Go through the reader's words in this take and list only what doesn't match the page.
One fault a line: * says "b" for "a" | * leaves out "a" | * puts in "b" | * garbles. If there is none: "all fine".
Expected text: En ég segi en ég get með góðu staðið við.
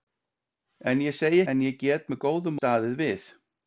all fine